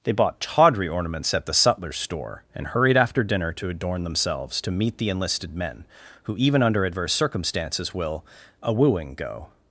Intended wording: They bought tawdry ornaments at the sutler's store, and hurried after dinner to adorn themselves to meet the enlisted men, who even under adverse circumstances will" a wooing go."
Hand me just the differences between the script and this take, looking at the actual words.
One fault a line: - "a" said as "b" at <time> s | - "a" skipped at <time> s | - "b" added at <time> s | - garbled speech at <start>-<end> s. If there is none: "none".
none